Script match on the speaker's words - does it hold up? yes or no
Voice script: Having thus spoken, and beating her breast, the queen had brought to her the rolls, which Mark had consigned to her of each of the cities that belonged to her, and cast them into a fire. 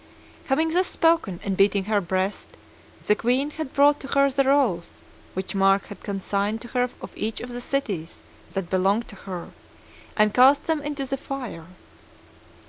no